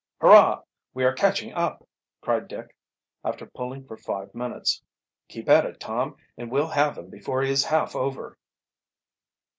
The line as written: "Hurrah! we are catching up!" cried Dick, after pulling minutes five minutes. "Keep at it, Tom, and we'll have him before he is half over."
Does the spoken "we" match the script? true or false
true